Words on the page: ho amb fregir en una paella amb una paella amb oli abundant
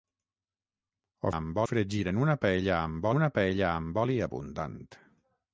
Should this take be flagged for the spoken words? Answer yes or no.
no